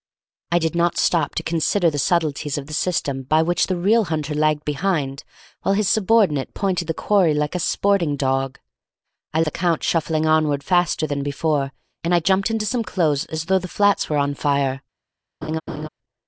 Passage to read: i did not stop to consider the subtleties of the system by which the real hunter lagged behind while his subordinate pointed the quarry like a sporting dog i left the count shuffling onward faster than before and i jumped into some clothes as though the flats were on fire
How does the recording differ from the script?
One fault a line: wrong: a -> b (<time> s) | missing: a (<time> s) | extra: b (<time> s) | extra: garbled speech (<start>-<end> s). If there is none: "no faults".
missing: left (9.4 s)